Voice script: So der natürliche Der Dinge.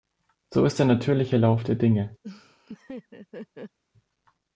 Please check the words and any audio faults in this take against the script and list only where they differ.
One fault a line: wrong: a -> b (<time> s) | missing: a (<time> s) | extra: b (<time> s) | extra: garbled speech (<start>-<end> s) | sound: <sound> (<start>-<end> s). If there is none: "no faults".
extra: ist (0.7 s)
extra: Lauf (1.4 s)
sound: laugh (2.2-3.8 s)